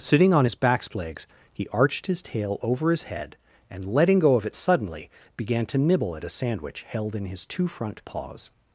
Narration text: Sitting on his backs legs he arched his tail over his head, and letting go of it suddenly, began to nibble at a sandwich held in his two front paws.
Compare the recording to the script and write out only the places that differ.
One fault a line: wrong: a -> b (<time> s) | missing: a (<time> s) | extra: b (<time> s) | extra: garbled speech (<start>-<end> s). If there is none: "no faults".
no faults